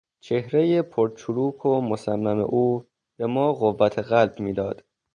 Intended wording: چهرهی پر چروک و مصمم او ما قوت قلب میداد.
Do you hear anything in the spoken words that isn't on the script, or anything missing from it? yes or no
yes